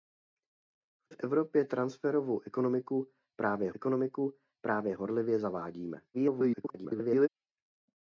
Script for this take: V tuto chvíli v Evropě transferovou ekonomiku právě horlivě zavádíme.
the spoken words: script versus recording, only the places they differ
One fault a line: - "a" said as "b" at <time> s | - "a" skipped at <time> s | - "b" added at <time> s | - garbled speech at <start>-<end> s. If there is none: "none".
- "tuto chvíli" skipped at 1.1 s
- "ekonomiku právě" added at 3.7 s
- garbled speech at 6.1-7.3 s